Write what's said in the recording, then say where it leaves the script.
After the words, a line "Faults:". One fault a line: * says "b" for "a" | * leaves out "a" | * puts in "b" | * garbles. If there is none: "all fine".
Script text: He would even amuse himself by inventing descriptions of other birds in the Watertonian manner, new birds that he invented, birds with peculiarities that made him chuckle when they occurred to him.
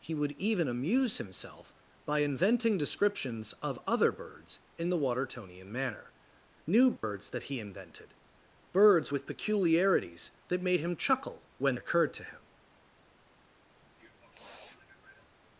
He would even amuse himself by inventing descriptions of other birds in the Watertonian manner, new birds that he invented, birds with peculiarities that made him chuckle when occurred to him.
Faults:
* leaves out "they"